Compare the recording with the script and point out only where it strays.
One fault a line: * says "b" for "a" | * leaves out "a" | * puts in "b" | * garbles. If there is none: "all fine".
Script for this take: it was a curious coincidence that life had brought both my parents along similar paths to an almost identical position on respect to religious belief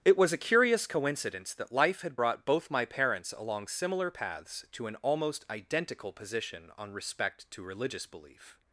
all fine